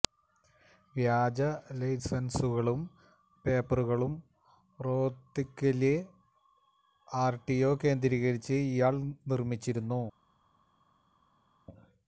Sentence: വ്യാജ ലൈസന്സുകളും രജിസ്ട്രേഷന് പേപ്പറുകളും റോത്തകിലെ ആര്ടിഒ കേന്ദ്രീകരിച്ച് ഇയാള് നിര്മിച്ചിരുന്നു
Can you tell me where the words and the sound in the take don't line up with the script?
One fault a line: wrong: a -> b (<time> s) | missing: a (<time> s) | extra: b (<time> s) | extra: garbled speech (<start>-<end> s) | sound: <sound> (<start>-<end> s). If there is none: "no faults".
missing: രജിസ്ട്രേഷന് (2.8 s)